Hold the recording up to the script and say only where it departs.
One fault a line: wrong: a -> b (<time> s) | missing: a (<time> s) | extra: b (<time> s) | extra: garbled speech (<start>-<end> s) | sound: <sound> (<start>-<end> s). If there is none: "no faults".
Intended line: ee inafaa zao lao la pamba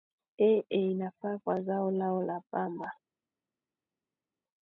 extra: kwa (1.4 s)